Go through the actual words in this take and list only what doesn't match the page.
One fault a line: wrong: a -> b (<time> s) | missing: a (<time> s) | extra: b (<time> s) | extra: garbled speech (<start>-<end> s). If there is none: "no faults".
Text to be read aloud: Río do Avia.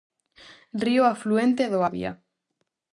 extra: afluente (1.1 s)